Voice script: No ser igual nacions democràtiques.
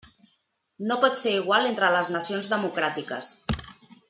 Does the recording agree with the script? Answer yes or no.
no